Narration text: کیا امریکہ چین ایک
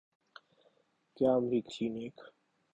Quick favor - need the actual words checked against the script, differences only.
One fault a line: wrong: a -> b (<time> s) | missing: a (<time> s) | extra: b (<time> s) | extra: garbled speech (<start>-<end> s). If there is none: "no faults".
no faults